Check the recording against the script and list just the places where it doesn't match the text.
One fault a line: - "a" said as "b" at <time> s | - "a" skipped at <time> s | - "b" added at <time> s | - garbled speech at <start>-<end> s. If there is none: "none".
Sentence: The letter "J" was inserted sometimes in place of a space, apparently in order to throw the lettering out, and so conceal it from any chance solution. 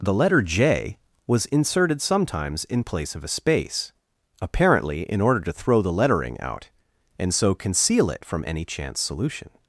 none